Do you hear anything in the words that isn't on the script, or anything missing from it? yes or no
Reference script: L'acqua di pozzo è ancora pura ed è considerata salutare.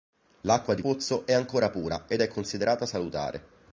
no